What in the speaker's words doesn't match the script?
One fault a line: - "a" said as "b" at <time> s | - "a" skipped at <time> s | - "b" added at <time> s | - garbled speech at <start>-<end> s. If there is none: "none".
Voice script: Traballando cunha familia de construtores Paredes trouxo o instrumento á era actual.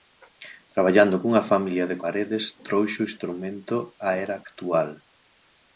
- "construtores" skipped at 2.0 s